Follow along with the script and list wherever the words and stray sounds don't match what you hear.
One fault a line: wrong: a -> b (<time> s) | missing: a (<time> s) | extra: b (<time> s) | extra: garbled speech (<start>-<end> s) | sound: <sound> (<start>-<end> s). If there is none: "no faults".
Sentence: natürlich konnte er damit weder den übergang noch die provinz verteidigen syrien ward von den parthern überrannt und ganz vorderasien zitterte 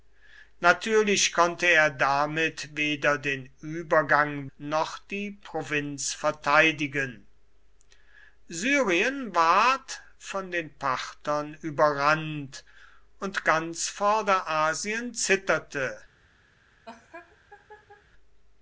sound: laugh (16.9-18.0 s)